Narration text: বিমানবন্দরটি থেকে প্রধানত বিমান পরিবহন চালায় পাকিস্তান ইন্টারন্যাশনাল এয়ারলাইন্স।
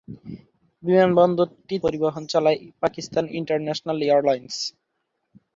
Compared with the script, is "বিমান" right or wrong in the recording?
wrong